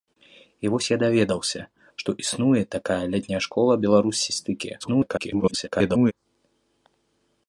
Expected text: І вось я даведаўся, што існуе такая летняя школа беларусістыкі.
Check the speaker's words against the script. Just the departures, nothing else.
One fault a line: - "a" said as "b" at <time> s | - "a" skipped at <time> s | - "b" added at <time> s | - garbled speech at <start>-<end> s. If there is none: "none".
- garbled speech at 4.8-6.1 s